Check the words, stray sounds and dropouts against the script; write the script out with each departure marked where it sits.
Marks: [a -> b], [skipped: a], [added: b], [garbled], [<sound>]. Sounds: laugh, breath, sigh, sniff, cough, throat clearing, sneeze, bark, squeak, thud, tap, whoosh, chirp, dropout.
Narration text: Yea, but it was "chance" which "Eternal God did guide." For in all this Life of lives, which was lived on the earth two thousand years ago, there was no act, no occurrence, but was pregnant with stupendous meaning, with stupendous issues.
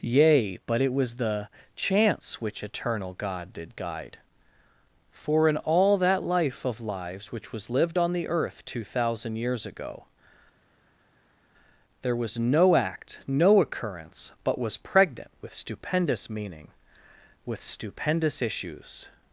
Yea, but it was [added: the] "chance" which "Eternal God did guide." For in all [this -> that] Life of lives, which was lived on the earth two thousand years ago, there was no act, no occurrence, but was pregnant with stupendous meaning, with stupendous issues.